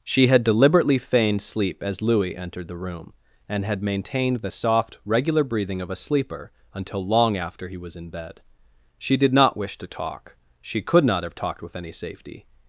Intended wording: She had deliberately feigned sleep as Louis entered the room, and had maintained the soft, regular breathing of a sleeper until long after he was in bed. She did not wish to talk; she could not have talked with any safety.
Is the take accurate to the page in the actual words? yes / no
yes